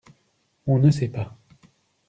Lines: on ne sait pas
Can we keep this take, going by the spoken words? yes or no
yes